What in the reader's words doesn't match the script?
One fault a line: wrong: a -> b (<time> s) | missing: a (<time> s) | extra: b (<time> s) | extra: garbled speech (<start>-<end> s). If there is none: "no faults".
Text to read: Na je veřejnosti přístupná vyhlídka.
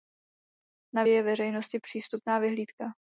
no faults